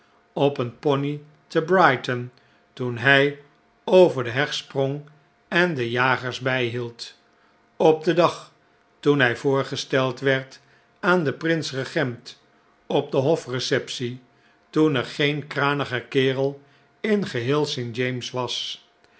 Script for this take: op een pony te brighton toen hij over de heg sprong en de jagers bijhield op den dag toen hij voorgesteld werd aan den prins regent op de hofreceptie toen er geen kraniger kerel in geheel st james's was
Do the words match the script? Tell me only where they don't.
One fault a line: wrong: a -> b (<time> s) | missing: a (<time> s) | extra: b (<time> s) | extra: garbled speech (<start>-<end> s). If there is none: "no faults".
no faults